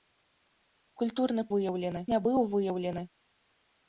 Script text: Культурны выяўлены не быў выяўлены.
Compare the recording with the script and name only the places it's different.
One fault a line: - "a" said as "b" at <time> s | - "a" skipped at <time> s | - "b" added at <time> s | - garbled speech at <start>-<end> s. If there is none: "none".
none